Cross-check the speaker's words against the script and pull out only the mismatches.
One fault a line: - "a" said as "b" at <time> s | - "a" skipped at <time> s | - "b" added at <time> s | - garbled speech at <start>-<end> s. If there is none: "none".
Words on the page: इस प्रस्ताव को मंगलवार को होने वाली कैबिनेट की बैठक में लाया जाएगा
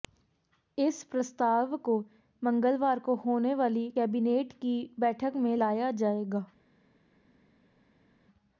none